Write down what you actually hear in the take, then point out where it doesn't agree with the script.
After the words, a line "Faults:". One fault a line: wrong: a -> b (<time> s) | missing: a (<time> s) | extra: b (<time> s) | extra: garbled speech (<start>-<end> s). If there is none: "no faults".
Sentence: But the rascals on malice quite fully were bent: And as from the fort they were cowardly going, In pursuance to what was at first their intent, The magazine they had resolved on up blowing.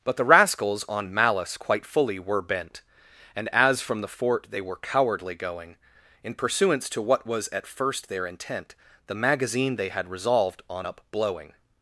But the rascals on malice quite fully were bent: And as from the fort they were cowardly going, In pursuance to what was at first their intent, The magazine they had resolved on up blowing.
Faults:
no faults